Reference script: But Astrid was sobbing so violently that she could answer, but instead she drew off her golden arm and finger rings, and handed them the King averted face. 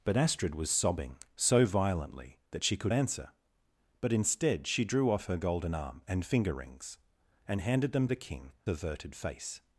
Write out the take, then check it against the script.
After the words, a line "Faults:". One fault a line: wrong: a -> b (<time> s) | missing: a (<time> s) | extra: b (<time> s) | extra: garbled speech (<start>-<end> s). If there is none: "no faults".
But Astrid was sobbing so violently that she could answer, but instead she drew off her golden arm and finger rings, and handed them the King averted face.
Faults:
no faults